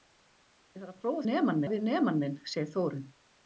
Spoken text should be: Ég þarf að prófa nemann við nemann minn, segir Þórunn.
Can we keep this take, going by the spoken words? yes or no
yes